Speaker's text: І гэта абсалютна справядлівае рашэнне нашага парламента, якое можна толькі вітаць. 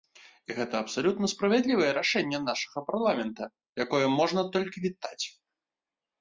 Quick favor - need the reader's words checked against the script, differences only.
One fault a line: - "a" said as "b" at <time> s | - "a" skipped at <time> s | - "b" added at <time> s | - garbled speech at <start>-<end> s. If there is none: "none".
none